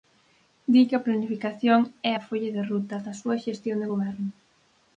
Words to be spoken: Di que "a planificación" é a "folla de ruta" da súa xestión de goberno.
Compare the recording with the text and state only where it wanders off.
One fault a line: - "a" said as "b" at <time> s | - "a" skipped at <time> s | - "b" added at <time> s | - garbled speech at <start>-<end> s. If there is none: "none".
none